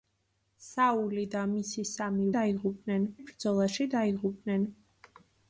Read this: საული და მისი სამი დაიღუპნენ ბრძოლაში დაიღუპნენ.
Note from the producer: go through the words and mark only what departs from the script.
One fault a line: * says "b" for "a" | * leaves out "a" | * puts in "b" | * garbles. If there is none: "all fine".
all fine